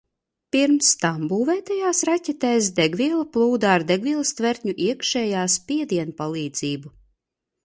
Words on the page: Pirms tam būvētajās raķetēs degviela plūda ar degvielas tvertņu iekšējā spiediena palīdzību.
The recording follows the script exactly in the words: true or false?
true